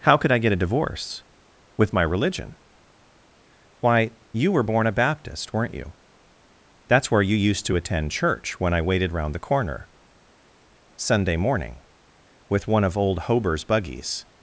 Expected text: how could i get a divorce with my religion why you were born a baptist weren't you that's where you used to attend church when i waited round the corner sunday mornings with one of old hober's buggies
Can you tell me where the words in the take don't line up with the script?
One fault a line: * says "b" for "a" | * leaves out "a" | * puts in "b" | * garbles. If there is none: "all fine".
* says "morning" for "mornings"